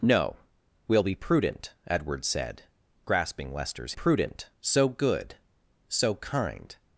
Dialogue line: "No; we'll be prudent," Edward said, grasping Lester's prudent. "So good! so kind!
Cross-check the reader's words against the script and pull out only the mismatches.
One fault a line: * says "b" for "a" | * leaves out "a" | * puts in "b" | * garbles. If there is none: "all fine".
all fine